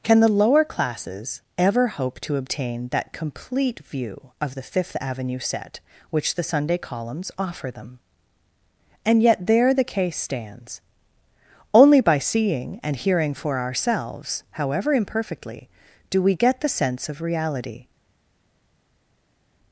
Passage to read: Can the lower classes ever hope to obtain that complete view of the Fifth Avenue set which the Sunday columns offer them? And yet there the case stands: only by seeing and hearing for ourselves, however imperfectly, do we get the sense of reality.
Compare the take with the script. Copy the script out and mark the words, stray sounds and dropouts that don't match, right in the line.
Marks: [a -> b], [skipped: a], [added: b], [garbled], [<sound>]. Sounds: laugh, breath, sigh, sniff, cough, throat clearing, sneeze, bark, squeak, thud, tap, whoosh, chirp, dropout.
Can the lower classes ever hope to obtain that complete view of the Fifth Avenue set which the Sunday columns offer them? And yet there the case stands: only by seeing and hearing for ourselves, however imperfectly, do we get the sense of reality.